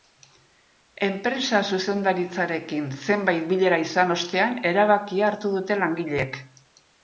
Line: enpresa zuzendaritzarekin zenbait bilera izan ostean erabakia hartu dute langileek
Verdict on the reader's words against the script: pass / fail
pass